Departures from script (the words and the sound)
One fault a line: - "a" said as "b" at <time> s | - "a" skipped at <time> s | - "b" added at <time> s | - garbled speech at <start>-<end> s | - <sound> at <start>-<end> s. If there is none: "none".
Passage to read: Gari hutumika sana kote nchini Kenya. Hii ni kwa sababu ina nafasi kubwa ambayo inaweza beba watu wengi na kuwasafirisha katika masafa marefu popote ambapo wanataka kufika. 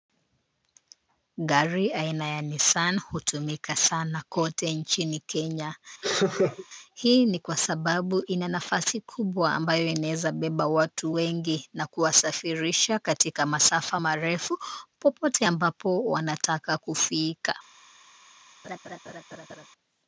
- "aina ya Nissan" added at 1.9 s
- laugh at 6.0-6.7 s
- laugh at 18.6-19.7 s